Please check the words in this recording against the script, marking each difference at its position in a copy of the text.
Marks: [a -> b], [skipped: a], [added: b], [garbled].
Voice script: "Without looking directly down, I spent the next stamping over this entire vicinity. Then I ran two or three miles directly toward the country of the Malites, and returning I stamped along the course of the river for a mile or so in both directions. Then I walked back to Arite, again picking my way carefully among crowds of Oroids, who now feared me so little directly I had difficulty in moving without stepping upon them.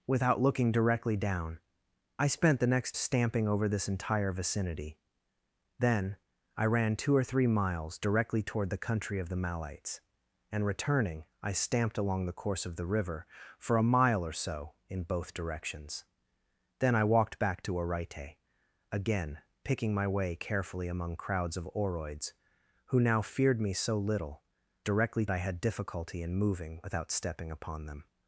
"Without looking directly down, I spent the next stamping over this entire vicinity. Then I ran two or three miles directly toward the country of the Malites, and returning I stamped along the course of the river for a mile or so in both directions. Then I walked back to Arite, again picking my way carefully among crowds of Oroids, who now feared me so little directly I had difficulty in moving without stepping upon them.